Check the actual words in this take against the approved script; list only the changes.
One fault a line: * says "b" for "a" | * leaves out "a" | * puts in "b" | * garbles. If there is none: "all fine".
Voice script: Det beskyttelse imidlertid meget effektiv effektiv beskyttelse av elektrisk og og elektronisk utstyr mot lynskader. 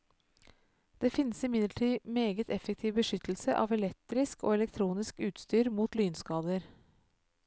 * says "finnes" for "beskyttelse"
* leaves out "effektiv"
* leaves out "og"